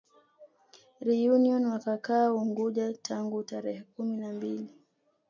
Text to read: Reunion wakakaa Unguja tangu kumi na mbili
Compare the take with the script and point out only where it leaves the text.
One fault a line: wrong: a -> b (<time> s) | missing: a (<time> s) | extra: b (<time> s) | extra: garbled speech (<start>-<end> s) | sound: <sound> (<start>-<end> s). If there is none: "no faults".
extra: tarehe (3.4 s)